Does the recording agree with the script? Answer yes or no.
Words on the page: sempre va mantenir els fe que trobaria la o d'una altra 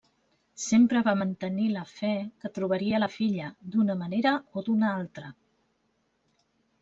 no